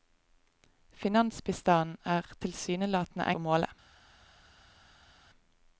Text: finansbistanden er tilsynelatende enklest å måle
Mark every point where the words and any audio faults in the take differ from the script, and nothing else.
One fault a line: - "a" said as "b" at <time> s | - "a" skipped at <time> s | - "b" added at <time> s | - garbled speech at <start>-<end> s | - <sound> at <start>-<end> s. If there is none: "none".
- "enklest" skipped at 3.3 s